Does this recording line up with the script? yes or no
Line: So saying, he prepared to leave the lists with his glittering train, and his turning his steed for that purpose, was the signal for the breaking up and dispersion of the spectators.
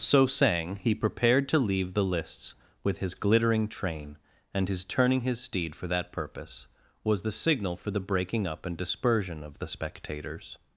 yes